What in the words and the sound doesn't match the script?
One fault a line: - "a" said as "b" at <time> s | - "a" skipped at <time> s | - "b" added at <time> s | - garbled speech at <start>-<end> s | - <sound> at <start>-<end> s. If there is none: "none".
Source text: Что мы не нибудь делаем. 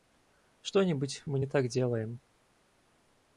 - "нибудь" added at 0.8 s
- "нибудь" said as "так" at 1.5 s